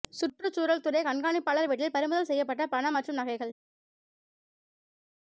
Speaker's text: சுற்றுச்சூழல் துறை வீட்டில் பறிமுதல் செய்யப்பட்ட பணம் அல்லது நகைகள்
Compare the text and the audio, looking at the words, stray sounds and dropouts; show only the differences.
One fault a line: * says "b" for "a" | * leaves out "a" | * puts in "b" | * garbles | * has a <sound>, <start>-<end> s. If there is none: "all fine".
* puts in "கண்காணிப்பாளர்"
* says "மற்றும்" for "அல்லது"